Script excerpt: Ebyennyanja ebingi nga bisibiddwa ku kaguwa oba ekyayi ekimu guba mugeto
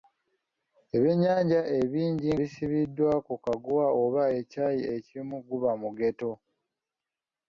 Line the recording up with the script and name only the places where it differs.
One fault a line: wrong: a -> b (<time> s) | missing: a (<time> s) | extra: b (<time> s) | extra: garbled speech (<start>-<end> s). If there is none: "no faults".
missing: nga (2.3 s)